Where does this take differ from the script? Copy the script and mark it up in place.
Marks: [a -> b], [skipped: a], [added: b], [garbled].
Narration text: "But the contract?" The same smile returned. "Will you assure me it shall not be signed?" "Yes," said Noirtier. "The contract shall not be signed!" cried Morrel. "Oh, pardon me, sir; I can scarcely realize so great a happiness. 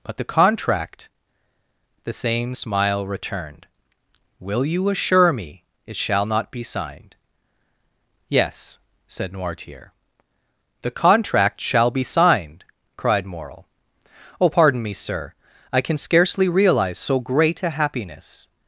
"But the contract?" The same smile returned. "Will you assure me it shall not be signed?" "Yes," said Noirtier. "The contract shall [skipped: not] be signed!" cried Morrel. "Oh, pardon me, sir; I can scarcely realize so great a happiness.